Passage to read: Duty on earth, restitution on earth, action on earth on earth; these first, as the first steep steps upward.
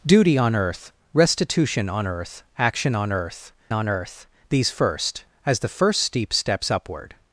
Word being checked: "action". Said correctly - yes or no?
yes